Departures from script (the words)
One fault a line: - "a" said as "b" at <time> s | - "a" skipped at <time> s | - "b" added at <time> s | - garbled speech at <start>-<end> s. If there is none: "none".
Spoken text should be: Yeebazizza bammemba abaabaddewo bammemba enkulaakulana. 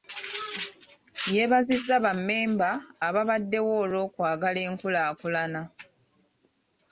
- "bammemba" said as "olw'okwagala" at 3.8 s